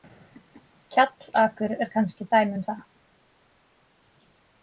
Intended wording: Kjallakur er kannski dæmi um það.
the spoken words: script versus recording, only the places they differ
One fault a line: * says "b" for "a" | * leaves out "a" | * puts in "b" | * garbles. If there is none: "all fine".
all fine